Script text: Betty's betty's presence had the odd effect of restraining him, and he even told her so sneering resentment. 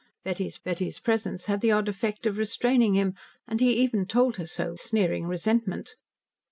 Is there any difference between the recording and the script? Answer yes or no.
no